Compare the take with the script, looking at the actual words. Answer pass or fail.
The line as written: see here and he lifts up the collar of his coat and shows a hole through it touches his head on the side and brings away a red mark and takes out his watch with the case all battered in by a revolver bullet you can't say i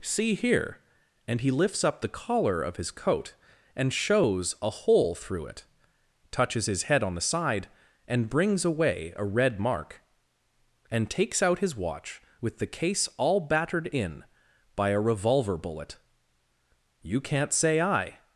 pass